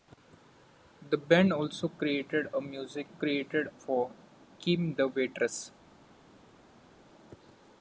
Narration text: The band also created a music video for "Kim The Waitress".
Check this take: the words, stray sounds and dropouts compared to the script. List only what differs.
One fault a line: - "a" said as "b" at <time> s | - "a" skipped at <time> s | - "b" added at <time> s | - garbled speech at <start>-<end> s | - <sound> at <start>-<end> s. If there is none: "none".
- "video" said as "created" at 3.1 s